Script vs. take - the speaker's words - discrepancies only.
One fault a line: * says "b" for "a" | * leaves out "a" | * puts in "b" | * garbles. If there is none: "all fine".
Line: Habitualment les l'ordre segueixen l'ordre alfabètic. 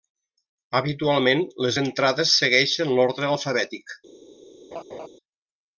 * says "entrades" for "l'ordre"